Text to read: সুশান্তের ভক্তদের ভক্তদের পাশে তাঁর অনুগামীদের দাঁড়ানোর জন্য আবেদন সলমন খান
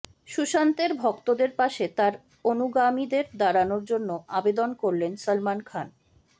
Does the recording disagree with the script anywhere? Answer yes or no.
yes